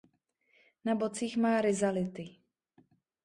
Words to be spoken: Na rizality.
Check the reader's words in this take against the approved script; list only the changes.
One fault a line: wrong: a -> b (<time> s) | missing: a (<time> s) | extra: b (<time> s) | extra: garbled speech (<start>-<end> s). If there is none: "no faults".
extra: bocích má (0.9 s)